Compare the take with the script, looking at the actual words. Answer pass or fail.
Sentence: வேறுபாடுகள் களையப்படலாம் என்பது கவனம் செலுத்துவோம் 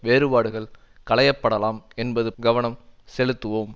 pass